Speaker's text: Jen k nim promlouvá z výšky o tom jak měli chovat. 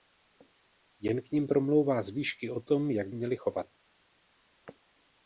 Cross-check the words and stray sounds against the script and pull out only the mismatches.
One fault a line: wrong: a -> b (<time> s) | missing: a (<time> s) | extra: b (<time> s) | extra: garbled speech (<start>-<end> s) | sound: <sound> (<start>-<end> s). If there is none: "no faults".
no faults